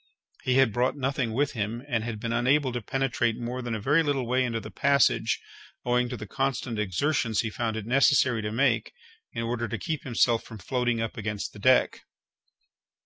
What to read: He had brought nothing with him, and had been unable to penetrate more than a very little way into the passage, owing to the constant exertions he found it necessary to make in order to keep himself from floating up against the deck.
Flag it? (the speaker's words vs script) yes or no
no